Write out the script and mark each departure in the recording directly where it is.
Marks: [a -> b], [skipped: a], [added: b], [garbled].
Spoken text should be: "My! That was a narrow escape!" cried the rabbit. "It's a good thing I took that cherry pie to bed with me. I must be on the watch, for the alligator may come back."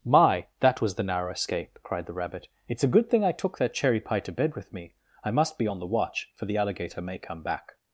"My! That was [a -> the] narrow escape!" cried the rabbit. "It's a good thing I took that cherry pie to bed with me. I must be on the watch, for the alligator may come back."